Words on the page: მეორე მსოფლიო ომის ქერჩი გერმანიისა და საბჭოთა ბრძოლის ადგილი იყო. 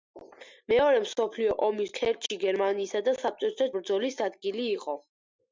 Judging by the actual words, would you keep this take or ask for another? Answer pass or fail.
pass